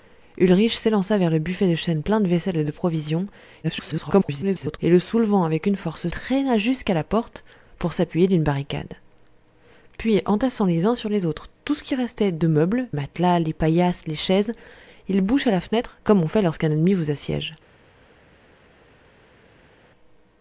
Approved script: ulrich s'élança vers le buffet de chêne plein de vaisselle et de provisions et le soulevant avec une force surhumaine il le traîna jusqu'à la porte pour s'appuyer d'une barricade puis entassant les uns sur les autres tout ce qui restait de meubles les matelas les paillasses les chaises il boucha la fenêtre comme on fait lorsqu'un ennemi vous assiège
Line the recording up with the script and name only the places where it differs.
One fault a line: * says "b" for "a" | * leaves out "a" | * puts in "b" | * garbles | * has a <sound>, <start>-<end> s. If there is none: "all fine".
* garbles
* leaves out "surhumaine il le"
* leaves out "les"